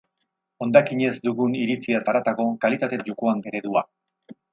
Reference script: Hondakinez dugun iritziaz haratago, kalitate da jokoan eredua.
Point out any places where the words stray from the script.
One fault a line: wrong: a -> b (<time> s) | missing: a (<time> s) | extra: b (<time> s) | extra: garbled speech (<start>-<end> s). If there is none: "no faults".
no faults